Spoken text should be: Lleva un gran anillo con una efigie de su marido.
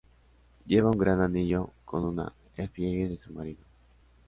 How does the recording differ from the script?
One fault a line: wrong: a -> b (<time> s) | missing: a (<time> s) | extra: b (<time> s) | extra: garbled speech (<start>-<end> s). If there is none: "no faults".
no faults